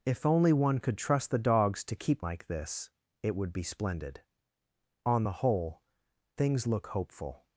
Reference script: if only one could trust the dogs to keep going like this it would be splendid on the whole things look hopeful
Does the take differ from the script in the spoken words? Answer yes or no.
yes